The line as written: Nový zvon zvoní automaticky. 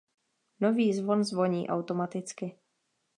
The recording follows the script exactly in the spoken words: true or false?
true